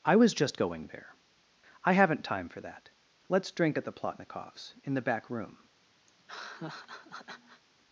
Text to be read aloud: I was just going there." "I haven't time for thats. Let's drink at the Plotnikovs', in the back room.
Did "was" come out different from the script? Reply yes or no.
no